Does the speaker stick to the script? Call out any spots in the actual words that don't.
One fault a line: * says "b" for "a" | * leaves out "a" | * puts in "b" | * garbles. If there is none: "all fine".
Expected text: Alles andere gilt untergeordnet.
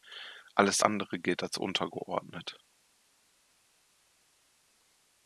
* puts in "als"